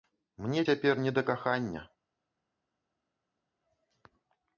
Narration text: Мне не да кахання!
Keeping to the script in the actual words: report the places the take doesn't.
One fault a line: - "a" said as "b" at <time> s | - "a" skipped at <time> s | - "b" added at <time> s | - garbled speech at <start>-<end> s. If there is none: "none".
- "цяпер" added at 0.7 s